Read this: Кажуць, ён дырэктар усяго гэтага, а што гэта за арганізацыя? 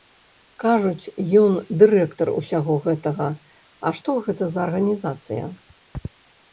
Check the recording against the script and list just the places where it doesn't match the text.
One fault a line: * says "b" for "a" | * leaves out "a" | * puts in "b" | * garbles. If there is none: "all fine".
all fine